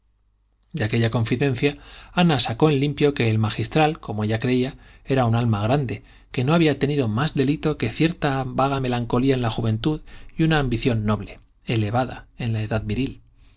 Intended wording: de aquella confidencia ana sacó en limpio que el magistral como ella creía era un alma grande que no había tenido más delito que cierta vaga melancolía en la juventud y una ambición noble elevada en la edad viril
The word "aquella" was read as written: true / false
true